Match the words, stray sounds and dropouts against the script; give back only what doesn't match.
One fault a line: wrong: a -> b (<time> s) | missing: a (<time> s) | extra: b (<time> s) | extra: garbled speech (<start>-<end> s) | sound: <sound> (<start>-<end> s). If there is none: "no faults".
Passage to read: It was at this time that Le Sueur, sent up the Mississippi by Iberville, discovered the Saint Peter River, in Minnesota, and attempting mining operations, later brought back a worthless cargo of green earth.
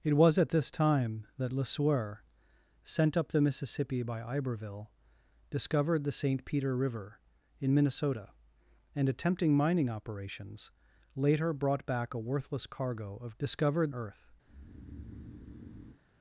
wrong: green -> discovered (13.4 s)
sound: breath (14.5-16.0 s)